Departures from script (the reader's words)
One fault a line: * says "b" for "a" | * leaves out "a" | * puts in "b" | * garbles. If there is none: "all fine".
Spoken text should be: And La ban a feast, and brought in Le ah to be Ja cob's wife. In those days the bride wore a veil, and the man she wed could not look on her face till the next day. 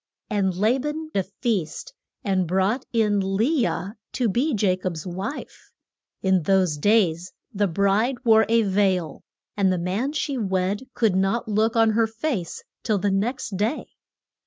all fine